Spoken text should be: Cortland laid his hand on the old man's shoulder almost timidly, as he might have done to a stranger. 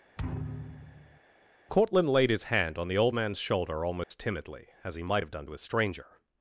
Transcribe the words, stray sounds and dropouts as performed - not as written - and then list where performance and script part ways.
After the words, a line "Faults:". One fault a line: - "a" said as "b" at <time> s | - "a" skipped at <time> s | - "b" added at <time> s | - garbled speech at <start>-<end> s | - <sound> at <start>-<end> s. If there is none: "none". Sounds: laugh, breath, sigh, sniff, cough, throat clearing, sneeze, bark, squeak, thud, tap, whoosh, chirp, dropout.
Cortland laid his hand on the old man's shoulder almost timidly, as he might have done to a stranger.
Faults:
- thud at 0.2-1.2 s
- dropout at 4.0-4.1 s